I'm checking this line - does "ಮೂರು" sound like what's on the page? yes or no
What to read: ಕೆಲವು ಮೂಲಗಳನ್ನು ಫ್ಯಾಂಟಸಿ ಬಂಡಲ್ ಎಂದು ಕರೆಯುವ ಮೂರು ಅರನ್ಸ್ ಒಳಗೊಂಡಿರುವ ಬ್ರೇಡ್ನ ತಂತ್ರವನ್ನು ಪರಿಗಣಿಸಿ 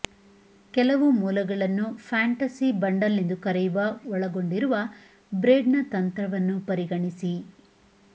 no